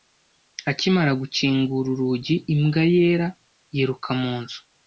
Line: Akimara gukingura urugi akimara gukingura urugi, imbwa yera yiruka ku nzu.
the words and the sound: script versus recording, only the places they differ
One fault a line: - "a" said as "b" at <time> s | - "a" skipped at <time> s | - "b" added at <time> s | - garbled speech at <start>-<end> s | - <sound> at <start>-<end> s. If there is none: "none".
- "akimara gukingura urugi" skipped at 2.4 s
- "ku" said as "mu" at 4.2 s